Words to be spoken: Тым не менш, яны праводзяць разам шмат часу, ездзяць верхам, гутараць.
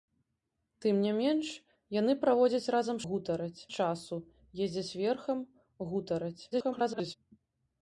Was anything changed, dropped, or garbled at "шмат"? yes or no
yes